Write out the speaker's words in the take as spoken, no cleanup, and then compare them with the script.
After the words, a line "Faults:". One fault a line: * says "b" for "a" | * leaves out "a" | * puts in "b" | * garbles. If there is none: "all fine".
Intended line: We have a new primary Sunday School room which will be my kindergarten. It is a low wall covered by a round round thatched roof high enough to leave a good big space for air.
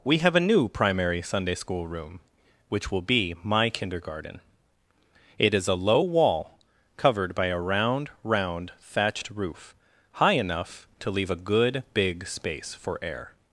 We have a new primary Sunday School room which will be my kindergarten. It is a low wall covered by a round round thatched roof high enough to leave a good big space for air.
Faults:
all fine